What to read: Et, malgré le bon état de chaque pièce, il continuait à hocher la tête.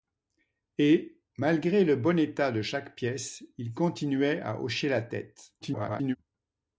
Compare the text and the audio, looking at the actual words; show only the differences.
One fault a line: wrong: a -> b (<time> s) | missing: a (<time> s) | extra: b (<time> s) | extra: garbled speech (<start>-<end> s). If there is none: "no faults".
extra: garbled speech (5.6-6.2 s)